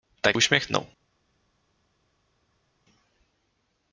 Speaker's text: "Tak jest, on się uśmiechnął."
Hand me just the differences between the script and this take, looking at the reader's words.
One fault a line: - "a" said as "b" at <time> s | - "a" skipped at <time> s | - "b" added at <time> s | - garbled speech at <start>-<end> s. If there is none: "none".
- "jest on się" skipped at 0.4 s